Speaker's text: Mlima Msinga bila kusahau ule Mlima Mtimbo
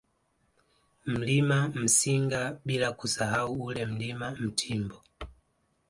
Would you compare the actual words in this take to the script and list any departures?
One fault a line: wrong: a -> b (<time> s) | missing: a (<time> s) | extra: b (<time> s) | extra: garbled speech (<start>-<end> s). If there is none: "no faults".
no faults